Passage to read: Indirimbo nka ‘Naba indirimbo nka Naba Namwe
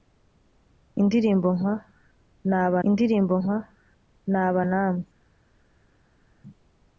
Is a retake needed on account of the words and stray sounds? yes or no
no